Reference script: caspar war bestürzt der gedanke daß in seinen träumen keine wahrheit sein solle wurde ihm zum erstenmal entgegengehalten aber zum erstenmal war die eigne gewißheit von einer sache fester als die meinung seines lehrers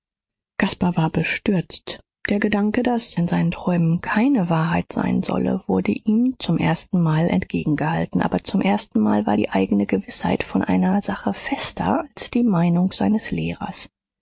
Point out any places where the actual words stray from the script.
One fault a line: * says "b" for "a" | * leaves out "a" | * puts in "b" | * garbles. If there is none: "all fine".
all fine